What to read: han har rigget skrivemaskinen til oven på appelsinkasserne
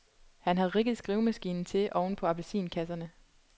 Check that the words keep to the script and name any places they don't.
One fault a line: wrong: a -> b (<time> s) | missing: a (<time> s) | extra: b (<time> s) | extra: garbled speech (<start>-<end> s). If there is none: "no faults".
no faults